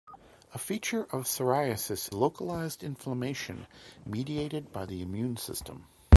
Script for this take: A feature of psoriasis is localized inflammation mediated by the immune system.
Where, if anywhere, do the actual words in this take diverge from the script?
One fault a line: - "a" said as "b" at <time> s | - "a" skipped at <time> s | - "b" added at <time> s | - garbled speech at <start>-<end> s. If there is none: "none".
- "is" skipped at 2.1 s